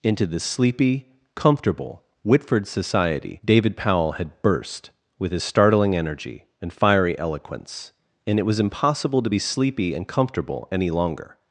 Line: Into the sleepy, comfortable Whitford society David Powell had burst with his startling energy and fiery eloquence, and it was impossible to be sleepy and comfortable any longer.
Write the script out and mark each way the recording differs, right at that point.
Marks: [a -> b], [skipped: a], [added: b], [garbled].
Into the sleepy, comfortable Whitford society David Powell had burst with his startling energy and fiery eloquence, and it was impossible to be sleepy and comfortable any longer.